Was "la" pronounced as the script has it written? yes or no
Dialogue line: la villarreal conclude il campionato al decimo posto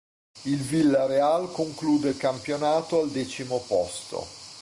no